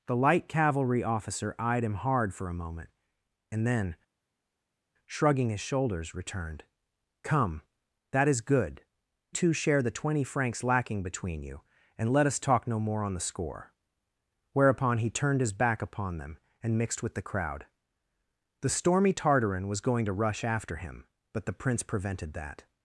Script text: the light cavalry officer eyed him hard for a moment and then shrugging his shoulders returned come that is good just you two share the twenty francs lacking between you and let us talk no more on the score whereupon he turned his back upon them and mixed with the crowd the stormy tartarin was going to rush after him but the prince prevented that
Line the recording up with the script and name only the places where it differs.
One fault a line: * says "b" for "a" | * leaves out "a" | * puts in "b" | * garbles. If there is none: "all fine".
* leaves out "just you"